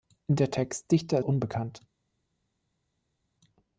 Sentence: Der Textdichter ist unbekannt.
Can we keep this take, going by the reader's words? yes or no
no